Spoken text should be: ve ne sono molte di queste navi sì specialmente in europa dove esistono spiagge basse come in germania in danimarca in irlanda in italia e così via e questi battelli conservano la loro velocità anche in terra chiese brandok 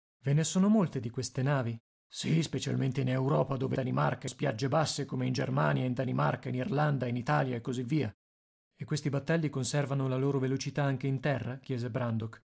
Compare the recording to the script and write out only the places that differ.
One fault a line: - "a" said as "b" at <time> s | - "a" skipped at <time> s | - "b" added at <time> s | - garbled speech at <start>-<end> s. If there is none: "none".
- "esistono" said as "danimarca" at 3.7 s